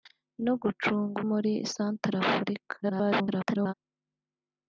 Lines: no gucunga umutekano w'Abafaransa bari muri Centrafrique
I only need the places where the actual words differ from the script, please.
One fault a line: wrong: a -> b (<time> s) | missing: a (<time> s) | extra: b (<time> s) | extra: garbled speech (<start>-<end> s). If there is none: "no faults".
missing: umutekano w'Abafaransa bari (1.2 s)
extra: garbled speech (2.8-3.7 s)